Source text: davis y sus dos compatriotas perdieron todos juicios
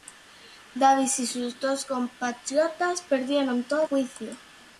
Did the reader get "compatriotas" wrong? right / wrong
right